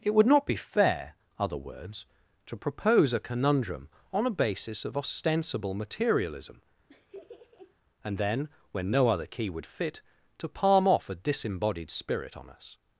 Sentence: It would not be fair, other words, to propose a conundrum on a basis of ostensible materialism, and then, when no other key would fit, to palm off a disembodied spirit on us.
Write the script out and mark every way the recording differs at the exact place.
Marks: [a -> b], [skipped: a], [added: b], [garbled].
It would not be fair, other words, to propose a conundrum on a basis of ostensible materialism, and then, when no other key would fit, to palm off a disembodied spirit on us.